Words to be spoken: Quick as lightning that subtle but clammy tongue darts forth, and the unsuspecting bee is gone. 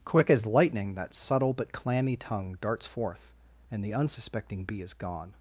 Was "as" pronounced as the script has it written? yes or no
yes